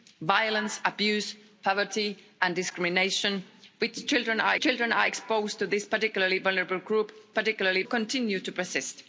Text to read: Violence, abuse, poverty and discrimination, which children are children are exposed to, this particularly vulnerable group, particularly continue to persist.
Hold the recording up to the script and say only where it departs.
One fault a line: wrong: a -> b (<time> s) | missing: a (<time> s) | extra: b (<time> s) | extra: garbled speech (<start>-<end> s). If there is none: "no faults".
no faults